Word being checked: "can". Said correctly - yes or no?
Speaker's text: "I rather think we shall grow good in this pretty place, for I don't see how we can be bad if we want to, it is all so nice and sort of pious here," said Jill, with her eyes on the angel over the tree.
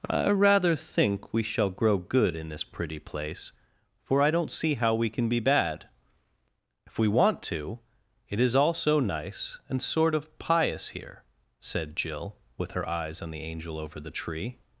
yes